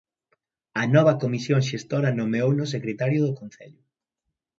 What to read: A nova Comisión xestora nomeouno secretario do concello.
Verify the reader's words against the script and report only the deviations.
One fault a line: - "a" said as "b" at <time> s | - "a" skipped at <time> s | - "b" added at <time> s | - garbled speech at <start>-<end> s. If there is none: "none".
none